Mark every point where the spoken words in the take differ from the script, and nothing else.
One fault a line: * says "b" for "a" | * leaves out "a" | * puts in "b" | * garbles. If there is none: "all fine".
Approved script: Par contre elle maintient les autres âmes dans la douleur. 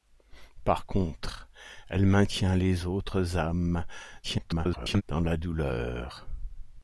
* garbles